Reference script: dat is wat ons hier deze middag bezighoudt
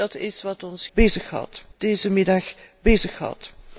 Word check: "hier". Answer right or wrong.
wrong